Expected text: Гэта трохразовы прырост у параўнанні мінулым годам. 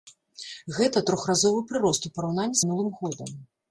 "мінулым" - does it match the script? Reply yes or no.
yes